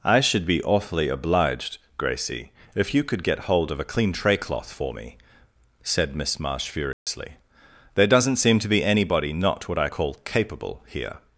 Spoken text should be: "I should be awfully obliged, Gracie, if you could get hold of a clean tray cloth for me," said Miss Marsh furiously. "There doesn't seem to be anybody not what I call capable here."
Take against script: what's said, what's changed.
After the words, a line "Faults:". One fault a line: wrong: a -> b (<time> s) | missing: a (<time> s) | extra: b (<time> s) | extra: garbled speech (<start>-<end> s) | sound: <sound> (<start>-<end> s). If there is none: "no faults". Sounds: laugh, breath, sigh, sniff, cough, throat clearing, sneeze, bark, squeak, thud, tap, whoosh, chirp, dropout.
"I should be awfully obliged, Gracie, if you could get hold of a clean tray cloth for me," said Miss Marsh furiously. "There doesn't seem to be anybody not what I call capable here."
Faults:
sound: dropout (6.9-7.1 s)